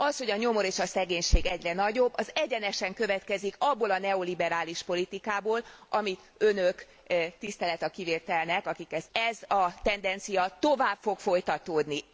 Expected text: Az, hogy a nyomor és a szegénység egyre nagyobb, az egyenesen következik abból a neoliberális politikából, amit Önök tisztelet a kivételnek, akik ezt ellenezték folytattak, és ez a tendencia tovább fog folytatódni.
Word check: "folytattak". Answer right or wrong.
wrong